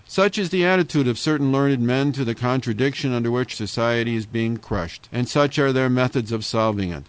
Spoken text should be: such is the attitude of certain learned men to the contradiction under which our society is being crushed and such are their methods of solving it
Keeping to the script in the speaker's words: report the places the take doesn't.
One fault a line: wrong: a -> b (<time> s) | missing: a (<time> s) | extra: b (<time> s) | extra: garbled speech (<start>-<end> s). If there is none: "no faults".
missing: our (3.5 s)